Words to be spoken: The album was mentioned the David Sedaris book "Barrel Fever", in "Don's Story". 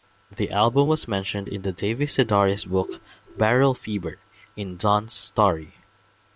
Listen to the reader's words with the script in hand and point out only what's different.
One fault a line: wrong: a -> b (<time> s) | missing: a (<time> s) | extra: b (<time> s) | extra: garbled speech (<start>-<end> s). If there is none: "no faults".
extra: in (1.5 s)